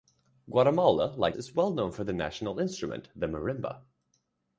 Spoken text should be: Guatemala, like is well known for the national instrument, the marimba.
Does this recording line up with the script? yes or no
yes